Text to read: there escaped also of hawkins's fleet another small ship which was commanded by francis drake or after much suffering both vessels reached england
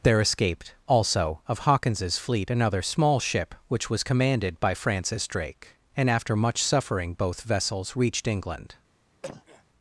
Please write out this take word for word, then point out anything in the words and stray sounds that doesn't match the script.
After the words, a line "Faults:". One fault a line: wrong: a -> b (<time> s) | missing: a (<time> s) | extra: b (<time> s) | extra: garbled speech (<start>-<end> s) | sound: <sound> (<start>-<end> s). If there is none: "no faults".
there escaped also of hawkins's fleet another small ship which was commanded by francis drake and after much suffering both vessels reached england
Faults:
wrong: or -> and (6.0 s)
sound: cough (9.2-9.6 s)